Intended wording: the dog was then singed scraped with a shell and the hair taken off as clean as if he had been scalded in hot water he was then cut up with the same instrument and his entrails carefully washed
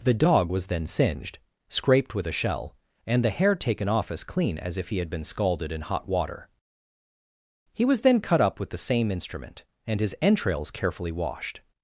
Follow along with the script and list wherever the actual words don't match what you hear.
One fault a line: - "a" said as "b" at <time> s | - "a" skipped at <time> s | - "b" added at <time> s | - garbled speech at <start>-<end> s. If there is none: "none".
none